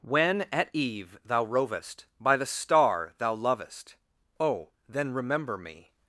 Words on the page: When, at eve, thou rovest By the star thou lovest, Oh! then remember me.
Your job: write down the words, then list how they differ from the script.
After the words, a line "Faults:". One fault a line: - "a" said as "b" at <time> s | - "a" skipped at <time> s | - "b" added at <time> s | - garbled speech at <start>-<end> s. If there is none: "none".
When, at eve, thou rovest By the star thou lovest, Oh! then remember me.
Faults:
none